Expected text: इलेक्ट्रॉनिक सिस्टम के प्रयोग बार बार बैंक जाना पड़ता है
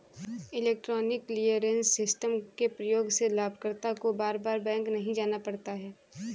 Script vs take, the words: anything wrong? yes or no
yes